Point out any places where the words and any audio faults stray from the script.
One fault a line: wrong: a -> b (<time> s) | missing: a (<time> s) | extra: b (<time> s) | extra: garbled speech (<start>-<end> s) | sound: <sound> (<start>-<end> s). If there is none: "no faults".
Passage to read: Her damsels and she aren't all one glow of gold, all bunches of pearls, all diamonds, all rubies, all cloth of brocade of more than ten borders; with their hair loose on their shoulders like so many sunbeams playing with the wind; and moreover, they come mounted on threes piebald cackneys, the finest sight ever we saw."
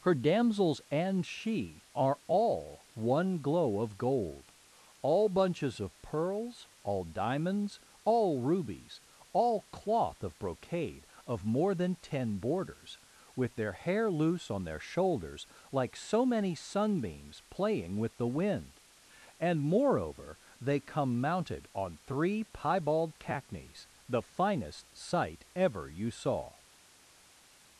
wrong: aren't -> are (1.9 s)
wrong: threes -> three (22.1 s)
wrong: we -> you (25.9 s)